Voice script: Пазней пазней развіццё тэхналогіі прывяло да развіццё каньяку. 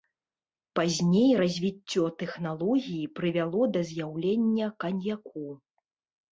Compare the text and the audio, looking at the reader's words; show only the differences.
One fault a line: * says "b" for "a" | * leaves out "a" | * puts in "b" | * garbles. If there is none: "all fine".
* leaves out "пазней"
* says "з'яўлення" for "развіццё"